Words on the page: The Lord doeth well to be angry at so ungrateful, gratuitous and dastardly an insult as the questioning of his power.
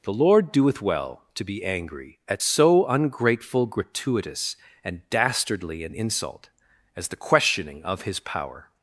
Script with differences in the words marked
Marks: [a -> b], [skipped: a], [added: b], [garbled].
The Lord doeth well to be angry at so ungrateful, gratuitous and dastardly an insult as the questioning of his power.